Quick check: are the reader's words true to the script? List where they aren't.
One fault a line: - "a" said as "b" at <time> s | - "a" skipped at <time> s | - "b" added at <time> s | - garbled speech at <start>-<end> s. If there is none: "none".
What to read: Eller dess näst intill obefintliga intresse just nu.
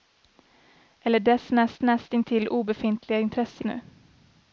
- "näst" added at 1.8 s
- "just" skipped at 3.6 s